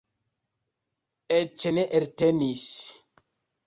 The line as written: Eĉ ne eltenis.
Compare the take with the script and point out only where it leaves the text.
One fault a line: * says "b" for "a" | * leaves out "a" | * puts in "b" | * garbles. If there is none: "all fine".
all fine